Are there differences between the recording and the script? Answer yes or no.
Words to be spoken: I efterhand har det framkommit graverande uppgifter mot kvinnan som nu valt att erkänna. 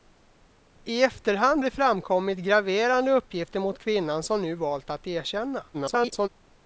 yes